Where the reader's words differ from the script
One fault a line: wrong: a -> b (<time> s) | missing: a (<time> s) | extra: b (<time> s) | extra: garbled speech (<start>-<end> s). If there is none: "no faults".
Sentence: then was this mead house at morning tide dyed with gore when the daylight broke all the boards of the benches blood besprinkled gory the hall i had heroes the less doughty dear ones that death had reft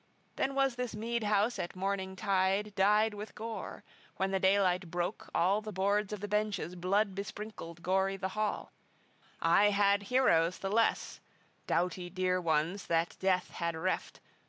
no faults